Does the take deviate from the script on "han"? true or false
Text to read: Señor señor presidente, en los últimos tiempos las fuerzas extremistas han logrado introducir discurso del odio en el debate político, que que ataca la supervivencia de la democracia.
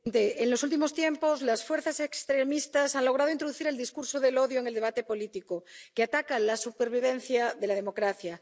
false